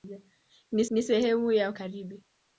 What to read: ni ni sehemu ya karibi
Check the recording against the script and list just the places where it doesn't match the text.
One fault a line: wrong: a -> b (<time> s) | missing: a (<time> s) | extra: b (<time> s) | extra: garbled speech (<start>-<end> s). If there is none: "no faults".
no faults